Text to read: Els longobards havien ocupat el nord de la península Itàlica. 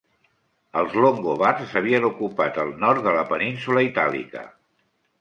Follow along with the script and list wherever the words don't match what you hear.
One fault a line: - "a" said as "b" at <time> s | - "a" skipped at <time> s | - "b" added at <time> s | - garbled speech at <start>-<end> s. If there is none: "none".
none